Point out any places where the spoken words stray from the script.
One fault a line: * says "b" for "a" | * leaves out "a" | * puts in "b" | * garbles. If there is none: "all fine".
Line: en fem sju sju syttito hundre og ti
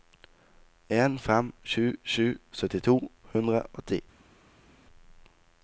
all fine